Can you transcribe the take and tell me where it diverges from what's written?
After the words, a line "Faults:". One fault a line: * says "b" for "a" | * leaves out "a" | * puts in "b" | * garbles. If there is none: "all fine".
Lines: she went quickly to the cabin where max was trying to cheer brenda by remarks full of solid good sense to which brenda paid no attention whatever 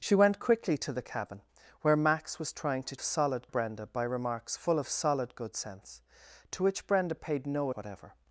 she went quickly to the cabin where max was trying to solid brenda by remarks full of solid good sense to which brenda paid no whatever
Faults:
* says "solid" for "cheer"
* leaves out "attention"